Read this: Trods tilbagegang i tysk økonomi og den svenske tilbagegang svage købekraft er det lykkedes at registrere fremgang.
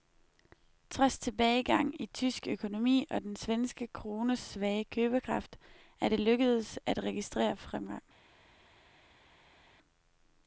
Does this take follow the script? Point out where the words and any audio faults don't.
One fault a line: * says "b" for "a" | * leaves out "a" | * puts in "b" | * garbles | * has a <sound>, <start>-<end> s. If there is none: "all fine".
* says "krones" for "tilbagegang"